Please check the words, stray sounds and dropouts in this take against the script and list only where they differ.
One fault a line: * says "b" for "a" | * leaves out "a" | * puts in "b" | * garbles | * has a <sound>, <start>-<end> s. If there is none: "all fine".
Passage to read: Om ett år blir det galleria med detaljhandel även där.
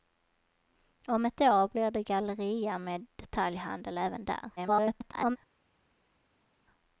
* garbles